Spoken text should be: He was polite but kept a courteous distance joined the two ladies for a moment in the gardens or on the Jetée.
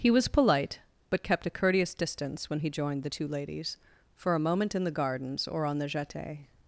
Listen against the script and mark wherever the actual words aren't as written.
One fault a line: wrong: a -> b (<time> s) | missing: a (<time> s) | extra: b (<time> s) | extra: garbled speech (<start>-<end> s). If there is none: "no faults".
extra: when he (2.5 s)